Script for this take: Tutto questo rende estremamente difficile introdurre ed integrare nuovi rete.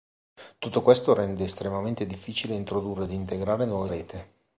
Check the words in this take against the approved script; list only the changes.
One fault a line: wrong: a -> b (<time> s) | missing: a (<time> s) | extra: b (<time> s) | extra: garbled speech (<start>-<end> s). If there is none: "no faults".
no faults